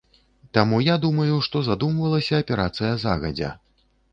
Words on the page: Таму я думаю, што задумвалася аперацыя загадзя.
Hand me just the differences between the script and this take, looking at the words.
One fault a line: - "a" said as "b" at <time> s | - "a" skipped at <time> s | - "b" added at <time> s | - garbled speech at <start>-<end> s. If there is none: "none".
none